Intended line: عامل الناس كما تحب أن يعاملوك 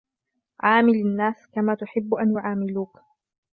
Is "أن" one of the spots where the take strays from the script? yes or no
no